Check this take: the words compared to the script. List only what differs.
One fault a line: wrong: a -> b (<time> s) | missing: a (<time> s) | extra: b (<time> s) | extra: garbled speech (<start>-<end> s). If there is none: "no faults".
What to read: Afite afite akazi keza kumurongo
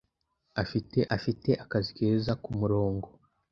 no faults